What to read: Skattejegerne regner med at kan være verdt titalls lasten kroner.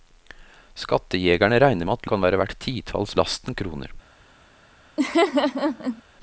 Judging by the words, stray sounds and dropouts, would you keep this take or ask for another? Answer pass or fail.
fail